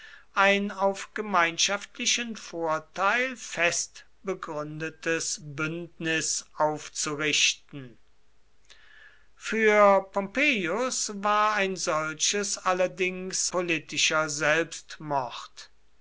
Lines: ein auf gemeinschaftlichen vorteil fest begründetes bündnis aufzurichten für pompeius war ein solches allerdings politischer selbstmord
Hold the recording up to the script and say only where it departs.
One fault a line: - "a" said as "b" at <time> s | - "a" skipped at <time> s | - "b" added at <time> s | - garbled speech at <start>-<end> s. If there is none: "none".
none